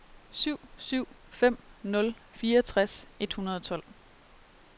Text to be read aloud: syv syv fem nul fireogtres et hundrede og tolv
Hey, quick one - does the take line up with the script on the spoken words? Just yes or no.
yes